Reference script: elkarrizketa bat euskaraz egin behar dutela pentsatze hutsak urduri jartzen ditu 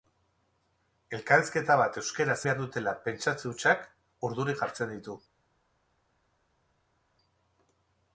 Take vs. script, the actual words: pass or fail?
fail